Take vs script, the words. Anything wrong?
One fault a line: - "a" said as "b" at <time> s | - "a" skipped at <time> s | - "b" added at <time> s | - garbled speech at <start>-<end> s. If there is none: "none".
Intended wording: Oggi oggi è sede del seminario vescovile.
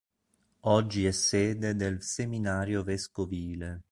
- "oggi" skipped at 1.1 s